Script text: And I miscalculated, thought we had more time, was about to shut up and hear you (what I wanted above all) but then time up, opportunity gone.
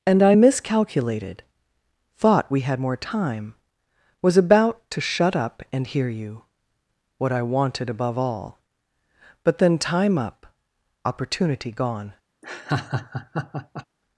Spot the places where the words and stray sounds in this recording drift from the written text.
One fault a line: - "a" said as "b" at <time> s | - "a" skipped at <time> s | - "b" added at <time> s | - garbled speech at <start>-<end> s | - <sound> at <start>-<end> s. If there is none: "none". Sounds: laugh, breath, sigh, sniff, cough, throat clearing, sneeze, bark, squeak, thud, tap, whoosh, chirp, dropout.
- laugh at 12.4-13.9 s